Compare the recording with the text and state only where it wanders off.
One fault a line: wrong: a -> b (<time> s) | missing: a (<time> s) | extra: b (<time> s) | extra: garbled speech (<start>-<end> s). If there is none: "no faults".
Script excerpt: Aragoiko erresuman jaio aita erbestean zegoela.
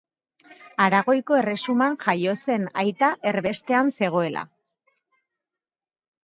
extra: zen (2.4 s)